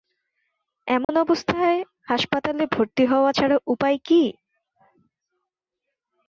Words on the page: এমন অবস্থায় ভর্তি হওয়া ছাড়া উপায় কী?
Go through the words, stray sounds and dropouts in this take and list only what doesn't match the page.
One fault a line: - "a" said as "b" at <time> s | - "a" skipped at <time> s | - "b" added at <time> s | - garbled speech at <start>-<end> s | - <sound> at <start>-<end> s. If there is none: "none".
- dropout at 1.0-1.1 s
- "হাসপাতালে" added at 2.1 s